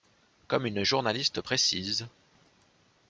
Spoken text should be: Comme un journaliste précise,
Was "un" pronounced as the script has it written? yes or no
no